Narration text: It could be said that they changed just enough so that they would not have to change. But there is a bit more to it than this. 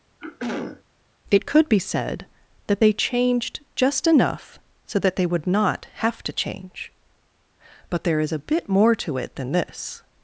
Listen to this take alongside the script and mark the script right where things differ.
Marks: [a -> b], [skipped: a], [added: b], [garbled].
It could be said that they changed just enough so that they would not have to change. But there is a bit more to it than this.